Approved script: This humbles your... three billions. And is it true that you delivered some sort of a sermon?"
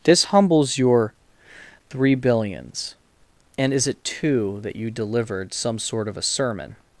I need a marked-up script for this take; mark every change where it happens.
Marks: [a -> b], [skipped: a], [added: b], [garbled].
This humbles your... three billions. And is it [true -> two] that you delivered some sort of a sermon?"